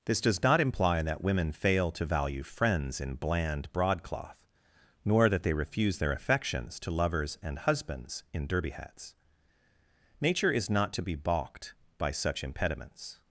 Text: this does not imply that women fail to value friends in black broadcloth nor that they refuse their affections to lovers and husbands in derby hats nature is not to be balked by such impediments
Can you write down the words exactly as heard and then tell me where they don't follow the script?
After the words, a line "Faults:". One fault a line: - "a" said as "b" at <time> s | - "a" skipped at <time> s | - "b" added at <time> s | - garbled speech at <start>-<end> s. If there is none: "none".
this does not imply that women fail to value friends in bland broadcloth nor that they refuse their affections to lovers and husbands in derby hats nature is not to be balked by such impediments
Faults:
- "black" said as "bland" at 3.1 s